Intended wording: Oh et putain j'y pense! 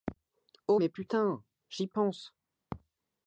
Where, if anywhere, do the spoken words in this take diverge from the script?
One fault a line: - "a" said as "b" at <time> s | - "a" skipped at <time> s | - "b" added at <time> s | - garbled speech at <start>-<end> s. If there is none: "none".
- "et" said as "mais" at 0.7 s